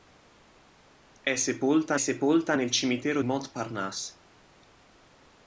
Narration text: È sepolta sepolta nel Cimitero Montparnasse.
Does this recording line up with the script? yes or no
yes